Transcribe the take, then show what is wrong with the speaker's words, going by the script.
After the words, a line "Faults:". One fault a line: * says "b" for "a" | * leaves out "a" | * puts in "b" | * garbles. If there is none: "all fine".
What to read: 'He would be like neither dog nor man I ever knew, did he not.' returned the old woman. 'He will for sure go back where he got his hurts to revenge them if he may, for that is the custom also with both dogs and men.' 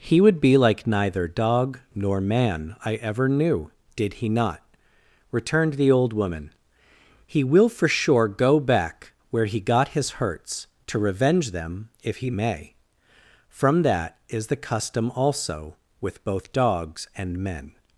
'He would be like neither dog nor man I ever knew, did he not.' returned the old woman. 'He will for sure go back where he got his hurts to revenge them if he may, from that is the custom also with both dogs and men.'
Faults:
* says "from" for "for"